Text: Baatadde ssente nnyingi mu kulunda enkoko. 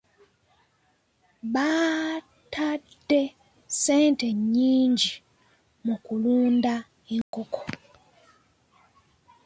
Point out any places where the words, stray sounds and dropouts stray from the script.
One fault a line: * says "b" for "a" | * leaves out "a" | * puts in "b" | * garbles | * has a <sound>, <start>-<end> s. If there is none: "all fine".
* has a dropout, 7.2-7.3 s